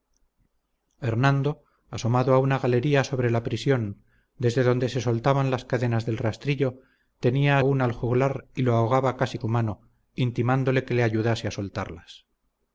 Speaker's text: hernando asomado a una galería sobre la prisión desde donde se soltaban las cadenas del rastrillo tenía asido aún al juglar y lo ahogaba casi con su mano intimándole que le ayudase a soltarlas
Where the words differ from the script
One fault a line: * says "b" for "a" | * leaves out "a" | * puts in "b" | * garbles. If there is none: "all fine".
* leaves out "asido"
* leaves out "con"